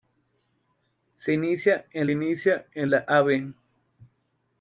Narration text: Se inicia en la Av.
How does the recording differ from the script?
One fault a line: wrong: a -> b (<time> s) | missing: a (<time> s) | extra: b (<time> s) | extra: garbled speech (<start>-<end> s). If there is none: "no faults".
extra: inicia en (2.1 s)